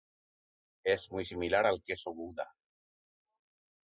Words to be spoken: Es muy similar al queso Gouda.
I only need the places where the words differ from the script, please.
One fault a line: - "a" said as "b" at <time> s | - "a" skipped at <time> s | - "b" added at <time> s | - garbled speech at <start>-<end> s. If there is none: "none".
none